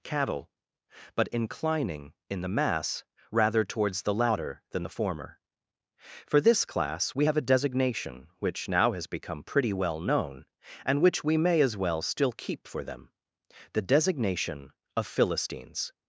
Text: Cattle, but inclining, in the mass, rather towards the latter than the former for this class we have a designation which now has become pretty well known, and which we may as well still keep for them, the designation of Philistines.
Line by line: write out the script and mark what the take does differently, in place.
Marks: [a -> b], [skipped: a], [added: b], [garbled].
Cattle, but inclining, in the mass, rather towards the latter than the former for this class we have a designation which now has become pretty well known, and which we may as well still keep for them, the designation of Philistines.